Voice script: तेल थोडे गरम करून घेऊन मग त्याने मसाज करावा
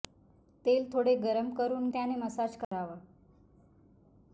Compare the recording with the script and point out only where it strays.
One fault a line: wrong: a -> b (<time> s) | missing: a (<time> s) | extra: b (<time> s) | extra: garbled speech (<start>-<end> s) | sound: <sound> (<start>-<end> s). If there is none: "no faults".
missing: घेऊन मग (1.9 s)
sound: dropout (2.6-2.7 s)